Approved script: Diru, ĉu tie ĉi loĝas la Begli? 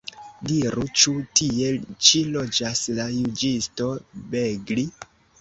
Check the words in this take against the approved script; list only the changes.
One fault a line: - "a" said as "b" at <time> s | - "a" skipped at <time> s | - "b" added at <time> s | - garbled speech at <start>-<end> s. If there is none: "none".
- "juĝisto" added at 3.2 s